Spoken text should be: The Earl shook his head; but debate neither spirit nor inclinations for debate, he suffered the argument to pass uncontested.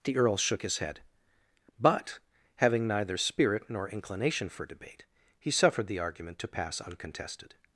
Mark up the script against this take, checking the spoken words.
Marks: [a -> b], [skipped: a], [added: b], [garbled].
The Earl shook his head; but [debate -> having] neither spirit nor [inclinations -> inclination] for debate, he suffered the argument to pass uncontested.